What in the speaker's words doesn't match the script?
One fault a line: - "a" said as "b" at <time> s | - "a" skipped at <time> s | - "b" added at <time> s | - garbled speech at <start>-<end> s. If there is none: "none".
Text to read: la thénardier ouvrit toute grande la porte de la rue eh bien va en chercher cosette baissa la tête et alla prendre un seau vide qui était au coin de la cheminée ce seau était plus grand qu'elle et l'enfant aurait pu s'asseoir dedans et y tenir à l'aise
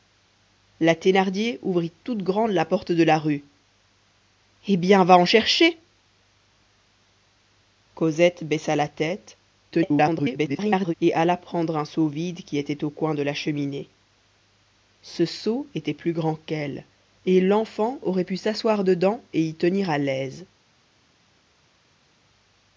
- garbled speech at 9.7-10.9 s